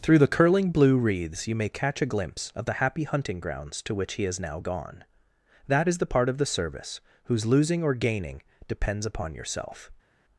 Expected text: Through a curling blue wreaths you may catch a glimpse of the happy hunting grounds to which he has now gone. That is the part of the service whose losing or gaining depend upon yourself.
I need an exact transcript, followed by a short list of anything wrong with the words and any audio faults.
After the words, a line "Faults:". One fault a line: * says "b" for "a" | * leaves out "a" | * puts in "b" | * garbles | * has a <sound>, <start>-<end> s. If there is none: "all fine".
Through the curling blue wreaths you may catch a glimpse of the happy hunting grounds to which he has now gone. That is the part of the service whose losing or gaining depends upon yourself.
Faults:
* says "the" for "a"
* says "depends" for "depend"